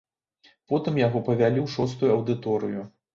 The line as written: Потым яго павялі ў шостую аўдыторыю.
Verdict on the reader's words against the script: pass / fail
pass